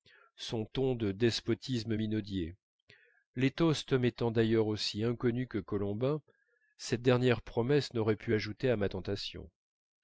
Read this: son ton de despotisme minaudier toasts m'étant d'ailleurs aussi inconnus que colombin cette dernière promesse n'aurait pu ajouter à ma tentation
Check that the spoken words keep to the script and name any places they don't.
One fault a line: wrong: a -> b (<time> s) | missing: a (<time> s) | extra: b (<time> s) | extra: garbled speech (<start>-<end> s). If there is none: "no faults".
extra: les (3.3 s)